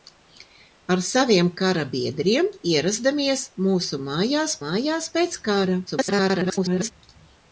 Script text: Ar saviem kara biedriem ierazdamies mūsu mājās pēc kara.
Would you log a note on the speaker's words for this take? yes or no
yes